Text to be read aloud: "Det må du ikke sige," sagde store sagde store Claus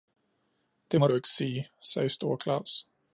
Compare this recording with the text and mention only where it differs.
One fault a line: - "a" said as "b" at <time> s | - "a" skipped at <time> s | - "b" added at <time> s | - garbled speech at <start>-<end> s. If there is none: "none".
- "sagde store" skipped at 2.4 s